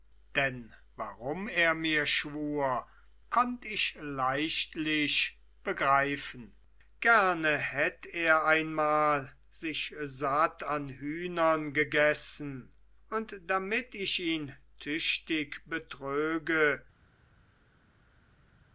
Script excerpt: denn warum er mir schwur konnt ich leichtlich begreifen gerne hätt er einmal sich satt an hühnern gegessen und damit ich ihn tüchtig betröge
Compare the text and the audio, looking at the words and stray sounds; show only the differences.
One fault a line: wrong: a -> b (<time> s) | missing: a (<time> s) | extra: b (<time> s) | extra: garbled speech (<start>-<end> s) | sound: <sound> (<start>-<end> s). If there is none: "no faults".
no faults